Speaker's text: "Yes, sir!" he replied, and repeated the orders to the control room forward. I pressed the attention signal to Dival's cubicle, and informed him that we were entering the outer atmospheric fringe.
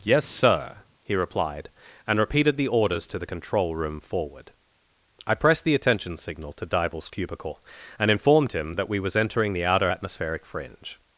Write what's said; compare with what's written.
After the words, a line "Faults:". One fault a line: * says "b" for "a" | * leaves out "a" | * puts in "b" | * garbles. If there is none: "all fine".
"Yes, sir!" he replied, and repeated the orders to the control room forward. I pressed the attention signal to Dival's cubicle, and informed him that we was entering the outer atmospheric fringe.
Faults:
* says "was" for "were"